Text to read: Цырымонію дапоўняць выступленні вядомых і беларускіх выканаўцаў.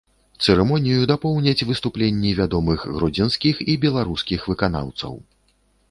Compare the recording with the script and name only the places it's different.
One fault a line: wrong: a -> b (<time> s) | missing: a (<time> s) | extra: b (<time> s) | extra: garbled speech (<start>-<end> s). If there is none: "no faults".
extra: гродзенскіх (3.0 s)